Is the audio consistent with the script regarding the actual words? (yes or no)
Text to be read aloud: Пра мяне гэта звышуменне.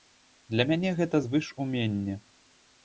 no